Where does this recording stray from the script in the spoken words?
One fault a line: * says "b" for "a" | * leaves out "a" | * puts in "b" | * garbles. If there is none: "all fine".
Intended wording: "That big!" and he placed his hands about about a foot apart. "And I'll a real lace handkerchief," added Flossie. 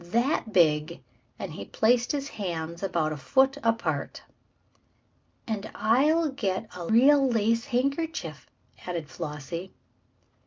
* leaves out "about"
* puts in "get"